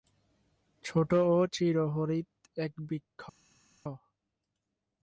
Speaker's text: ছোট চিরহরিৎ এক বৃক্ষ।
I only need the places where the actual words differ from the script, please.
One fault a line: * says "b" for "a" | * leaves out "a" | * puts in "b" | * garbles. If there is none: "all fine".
* puts in "ও"